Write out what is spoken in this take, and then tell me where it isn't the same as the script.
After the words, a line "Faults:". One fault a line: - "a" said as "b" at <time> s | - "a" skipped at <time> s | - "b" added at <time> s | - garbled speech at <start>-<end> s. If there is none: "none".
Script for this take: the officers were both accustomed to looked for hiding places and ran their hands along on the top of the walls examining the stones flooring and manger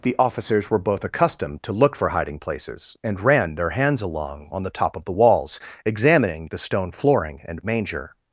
the officers were both accustomed to look for hiding places and ran their hands along on the top of the walls examining the stone flooring and manger
Faults:
- "looked" said as "look" at 1.7 s
- "stones" said as "stone" at 6.6 s